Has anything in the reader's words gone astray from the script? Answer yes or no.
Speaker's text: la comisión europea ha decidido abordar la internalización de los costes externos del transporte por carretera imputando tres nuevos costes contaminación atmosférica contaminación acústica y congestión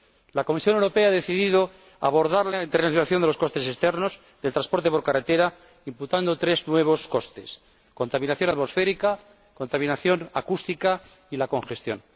no